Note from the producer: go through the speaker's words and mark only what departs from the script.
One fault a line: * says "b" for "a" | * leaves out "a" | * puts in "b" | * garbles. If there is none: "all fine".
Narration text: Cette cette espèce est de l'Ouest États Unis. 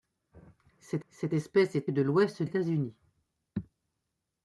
all fine